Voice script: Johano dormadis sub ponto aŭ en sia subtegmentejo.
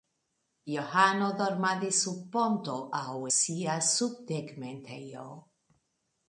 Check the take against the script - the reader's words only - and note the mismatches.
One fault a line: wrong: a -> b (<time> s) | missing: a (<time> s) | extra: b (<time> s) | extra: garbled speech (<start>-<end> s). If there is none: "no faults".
missing: en (3.1 s)